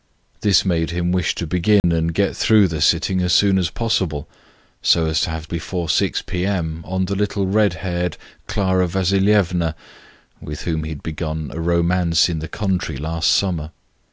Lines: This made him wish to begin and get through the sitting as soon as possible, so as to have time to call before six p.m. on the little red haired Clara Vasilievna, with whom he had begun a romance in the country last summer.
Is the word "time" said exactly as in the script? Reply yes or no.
no